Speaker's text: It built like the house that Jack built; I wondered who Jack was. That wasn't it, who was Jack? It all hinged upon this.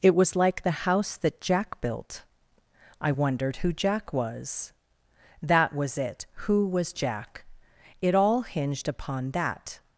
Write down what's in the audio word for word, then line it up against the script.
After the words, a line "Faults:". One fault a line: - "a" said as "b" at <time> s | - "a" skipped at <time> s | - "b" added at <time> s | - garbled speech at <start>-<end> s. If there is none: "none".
It was like the house that Jack built; I wondered who Jack was. That was it, who was Jack? It all hinged upon that.
Faults:
- "built" said as "was" at 0.1 s
- "wasn't" said as "was" at 5.7 s
- "this" said as "that" at 9.3 s